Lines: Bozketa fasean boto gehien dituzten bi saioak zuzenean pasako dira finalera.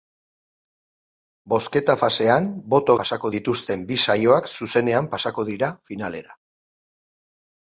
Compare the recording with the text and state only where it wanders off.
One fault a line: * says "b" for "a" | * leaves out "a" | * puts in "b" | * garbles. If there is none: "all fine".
* says "pasako" for "gehien"